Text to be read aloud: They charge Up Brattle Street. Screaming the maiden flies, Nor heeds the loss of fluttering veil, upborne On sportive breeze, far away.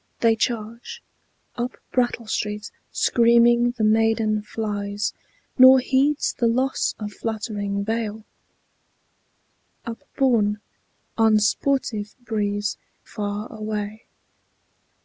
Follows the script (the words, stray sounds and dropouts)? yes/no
yes